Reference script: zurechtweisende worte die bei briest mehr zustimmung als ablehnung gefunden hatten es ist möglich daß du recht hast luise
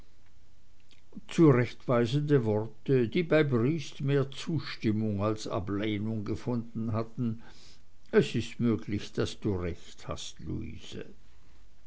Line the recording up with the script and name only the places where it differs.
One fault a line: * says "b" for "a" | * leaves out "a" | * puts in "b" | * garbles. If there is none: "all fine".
all fine